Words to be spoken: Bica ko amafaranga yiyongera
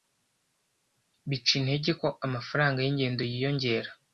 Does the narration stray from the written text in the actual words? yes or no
yes